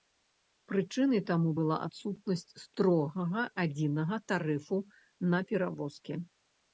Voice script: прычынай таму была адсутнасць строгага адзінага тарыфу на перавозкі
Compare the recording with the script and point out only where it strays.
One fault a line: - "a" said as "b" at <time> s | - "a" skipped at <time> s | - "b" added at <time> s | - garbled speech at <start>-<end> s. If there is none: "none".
none